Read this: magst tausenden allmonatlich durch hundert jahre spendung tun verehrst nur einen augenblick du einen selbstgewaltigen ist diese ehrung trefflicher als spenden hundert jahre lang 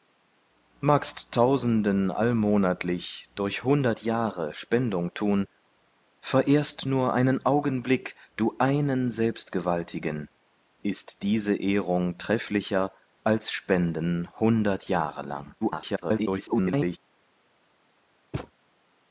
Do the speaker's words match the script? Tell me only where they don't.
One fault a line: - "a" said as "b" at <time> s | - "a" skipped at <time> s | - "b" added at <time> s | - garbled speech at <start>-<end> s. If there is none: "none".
- garbled speech at 15.6-17.0 s